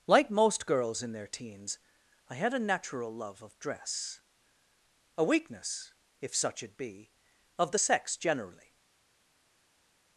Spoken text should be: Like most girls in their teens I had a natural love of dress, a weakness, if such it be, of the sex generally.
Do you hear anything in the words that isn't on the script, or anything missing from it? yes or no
no